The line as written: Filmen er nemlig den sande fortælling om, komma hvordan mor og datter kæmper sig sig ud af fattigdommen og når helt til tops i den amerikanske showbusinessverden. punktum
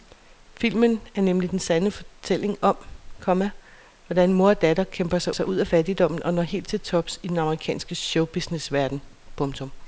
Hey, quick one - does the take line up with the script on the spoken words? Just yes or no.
yes